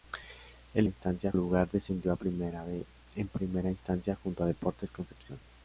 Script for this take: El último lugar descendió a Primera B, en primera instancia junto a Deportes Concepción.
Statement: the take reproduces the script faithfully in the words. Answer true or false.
false